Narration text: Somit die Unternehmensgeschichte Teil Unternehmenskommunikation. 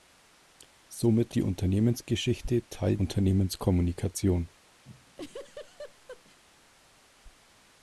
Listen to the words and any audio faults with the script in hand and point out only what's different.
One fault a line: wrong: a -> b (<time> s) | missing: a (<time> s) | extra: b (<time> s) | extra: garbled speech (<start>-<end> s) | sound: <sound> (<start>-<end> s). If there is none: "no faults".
sound: laugh (4.9-6.4 s)